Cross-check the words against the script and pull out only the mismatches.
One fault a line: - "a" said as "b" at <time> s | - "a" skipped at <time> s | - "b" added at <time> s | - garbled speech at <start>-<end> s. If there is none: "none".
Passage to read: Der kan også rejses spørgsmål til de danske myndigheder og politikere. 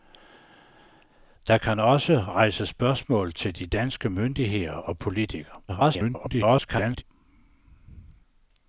- garbled speech at 5.7-7.0 s